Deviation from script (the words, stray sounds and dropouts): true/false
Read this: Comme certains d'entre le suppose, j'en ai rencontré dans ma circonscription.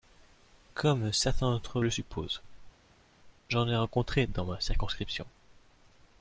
false